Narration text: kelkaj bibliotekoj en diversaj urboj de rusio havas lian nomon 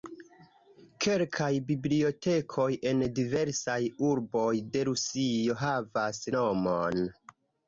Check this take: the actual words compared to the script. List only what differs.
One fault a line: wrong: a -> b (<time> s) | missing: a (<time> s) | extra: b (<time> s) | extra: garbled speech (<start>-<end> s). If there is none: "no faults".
missing: lian (6.2 s)